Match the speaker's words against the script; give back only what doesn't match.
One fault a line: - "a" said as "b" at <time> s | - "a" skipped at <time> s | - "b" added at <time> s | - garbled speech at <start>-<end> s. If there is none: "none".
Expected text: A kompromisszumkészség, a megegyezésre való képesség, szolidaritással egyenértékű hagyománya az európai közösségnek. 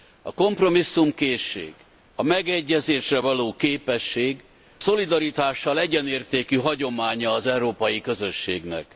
none